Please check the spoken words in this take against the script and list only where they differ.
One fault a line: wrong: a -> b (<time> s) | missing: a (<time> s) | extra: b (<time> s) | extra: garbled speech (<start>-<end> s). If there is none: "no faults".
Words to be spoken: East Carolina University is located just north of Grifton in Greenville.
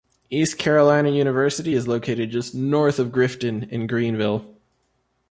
no faults